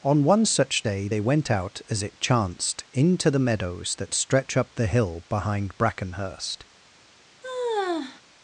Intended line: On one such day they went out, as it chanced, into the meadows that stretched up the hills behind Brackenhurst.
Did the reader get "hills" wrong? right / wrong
wrong